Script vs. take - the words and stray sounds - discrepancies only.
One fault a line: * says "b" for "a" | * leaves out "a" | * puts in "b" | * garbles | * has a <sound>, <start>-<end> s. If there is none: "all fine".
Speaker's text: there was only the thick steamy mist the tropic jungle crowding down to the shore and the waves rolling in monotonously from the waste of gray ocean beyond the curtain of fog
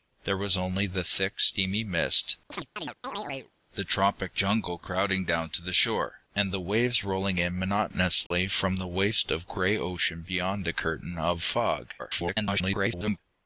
* has a chirp, 2.5-3.5 s
* has a dropout, 8.3-8.3 s
* garbles